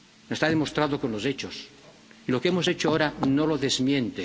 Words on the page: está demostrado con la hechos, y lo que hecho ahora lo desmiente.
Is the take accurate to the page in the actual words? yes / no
no